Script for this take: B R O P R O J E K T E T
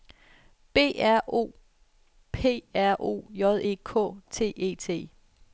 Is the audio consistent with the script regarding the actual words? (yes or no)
yes